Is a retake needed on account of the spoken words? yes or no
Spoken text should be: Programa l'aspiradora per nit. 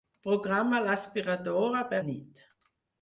no